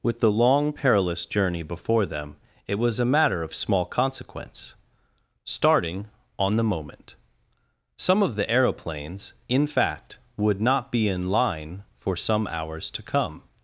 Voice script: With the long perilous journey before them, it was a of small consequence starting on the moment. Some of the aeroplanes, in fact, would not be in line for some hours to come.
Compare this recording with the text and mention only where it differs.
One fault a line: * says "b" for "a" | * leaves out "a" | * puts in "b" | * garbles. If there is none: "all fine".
* puts in "matter"